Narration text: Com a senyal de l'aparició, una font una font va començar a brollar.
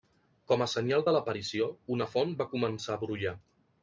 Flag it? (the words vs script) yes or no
yes